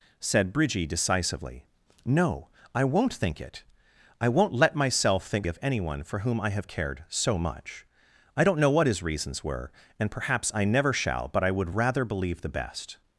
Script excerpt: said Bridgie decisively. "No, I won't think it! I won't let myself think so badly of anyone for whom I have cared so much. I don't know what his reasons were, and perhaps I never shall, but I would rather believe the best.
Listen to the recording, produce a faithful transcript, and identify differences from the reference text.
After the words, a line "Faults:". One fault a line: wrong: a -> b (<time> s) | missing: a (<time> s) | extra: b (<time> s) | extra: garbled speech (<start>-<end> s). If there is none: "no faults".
said Bridgie decisively. "No, I won't think it! I won't let myself think of anyone for whom I have cared so much. I don't know what his reasons were, and perhaps I never shall, but I would rather believe the best.
Faults:
missing: so badly (5.5 s)